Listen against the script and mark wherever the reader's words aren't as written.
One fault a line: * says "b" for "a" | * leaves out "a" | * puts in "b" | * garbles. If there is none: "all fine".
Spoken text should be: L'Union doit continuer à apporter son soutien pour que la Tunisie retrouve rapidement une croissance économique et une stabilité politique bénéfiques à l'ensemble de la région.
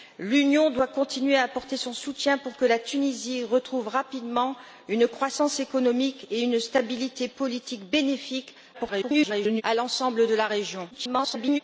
* garbles
* garbles